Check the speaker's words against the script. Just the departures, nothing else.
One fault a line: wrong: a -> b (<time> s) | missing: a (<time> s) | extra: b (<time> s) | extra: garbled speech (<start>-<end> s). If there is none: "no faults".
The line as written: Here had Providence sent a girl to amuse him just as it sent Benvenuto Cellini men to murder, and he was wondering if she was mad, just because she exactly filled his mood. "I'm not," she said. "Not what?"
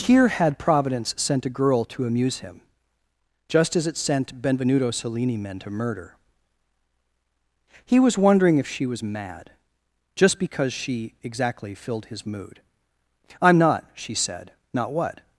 missing: and (6.2 s)